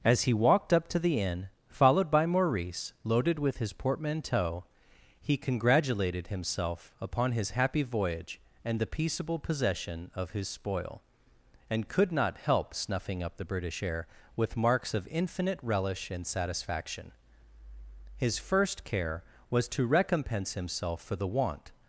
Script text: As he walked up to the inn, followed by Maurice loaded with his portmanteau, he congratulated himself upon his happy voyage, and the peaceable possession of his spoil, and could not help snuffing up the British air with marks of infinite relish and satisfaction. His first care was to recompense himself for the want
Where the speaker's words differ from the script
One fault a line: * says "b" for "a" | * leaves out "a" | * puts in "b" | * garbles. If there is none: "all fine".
all fine